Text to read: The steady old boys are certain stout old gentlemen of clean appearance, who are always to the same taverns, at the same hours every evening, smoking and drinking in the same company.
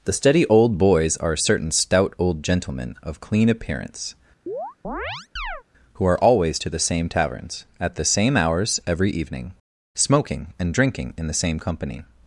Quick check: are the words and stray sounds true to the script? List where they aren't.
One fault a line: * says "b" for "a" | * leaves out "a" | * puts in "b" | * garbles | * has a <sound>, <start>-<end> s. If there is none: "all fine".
* has a chirp, 4.5-5.6 s